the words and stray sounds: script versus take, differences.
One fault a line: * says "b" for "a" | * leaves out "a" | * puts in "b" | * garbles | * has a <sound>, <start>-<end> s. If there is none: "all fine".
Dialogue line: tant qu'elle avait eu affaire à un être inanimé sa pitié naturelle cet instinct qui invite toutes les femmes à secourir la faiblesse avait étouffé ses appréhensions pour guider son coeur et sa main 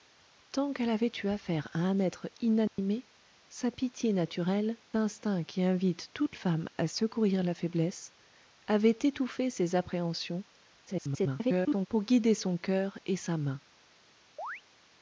* has a dropout, 2.7-2.8 s
* leaves out "cet"
* leaves out "les"
* garbles
* has a chirp, 14.4-14.6 s